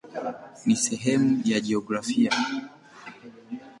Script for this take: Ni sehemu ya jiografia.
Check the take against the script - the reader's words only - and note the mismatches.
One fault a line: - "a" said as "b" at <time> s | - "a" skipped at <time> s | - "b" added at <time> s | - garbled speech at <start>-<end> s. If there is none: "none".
none